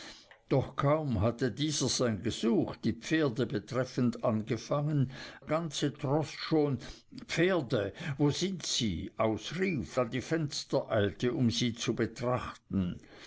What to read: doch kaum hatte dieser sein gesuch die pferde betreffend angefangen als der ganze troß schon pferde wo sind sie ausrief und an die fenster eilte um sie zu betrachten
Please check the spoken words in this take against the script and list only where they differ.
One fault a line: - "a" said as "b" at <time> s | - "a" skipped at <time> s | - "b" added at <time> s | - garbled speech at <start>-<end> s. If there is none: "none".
- "als der" skipped at 5.1 s
- "und" skipped at 10.0 s